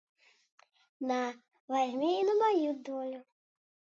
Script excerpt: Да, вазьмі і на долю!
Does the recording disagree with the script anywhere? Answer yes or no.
yes